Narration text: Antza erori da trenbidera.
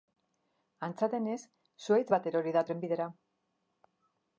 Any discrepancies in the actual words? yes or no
yes